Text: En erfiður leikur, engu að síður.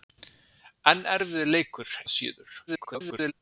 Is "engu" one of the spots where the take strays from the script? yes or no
yes